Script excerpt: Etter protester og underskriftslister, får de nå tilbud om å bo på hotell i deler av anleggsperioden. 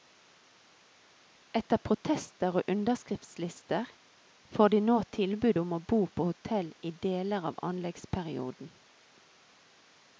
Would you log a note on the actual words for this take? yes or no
no